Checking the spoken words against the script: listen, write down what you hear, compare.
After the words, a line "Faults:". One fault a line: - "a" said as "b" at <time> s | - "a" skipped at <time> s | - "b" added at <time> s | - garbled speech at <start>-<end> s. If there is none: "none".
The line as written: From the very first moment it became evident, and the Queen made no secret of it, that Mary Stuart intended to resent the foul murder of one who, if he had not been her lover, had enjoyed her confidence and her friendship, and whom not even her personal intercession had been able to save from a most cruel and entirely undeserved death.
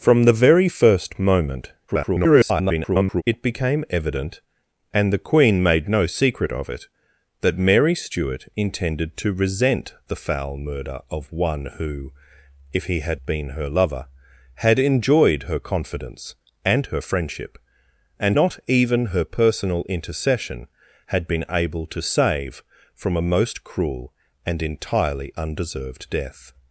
From the very first moment [garbled] it became evident, and the Queen made no secret of it, that Mary Stuart intended to resent the foul murder of one who, if he had been her lover, had enjoyed her confidence and her friendship, and not even her personal intercession had been able to save from a most cruel and entirely undeserved death.
Faults:
- garbled speech at 1.9-3.2 s
- "not" skipped at 13.2 s
- "whom" skipped at 18.4 s